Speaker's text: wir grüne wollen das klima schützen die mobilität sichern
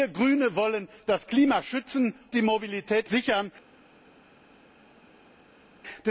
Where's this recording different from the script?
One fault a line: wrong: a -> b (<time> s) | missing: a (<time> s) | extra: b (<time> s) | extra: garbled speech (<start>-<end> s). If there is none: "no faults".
no faults